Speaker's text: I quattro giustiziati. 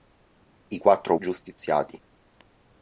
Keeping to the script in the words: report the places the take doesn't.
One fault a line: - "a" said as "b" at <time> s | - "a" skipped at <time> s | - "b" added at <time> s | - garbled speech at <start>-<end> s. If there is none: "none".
none